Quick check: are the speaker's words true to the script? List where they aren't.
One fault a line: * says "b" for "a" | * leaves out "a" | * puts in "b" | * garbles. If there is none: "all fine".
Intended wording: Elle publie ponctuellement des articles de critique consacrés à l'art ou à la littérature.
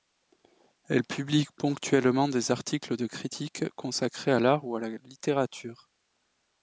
all fine